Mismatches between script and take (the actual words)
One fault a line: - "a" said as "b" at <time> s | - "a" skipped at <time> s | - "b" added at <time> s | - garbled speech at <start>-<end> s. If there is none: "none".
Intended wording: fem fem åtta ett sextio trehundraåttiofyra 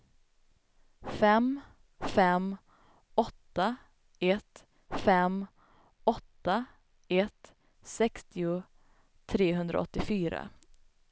- "fem åtta ett" added at 4.9 s